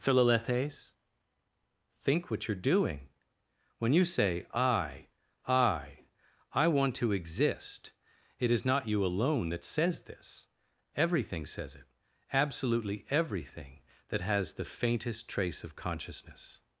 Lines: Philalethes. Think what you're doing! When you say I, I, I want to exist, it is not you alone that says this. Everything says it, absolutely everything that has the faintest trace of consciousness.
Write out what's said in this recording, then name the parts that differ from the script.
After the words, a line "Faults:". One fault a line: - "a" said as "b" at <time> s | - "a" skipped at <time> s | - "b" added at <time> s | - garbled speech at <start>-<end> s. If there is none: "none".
Philalethes. Think what you're doing! When you say I, I, I want to exist, it is not you alone that says this. Everything says it, absolutely everything that has the faintest trace of consciousness.
Faults:
none